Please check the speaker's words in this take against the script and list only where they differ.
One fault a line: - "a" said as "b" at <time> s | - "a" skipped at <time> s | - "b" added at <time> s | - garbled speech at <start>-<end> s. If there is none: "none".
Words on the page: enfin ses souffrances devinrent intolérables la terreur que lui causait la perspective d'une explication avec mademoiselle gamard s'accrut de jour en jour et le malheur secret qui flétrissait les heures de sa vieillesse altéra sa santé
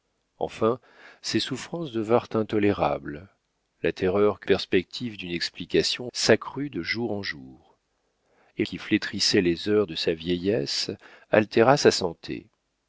- "lui causait la" skipped at 4.5 s
- "avec mademoiselle gamard" skipped at 6.1 s
- "le malheur secret" skipped at 8.6 s